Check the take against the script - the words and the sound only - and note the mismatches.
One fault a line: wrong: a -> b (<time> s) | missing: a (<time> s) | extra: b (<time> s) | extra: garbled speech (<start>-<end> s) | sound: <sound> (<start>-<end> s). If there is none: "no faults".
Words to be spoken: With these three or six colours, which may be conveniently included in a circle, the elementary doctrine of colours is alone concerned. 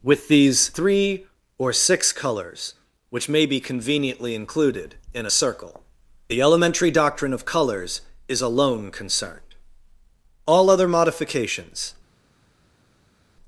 extra: All other modifications (10.5 s)